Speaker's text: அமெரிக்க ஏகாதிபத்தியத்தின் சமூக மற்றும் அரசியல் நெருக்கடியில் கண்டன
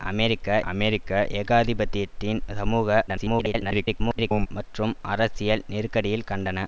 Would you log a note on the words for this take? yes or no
yes